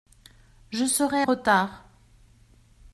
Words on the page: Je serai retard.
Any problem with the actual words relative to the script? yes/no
no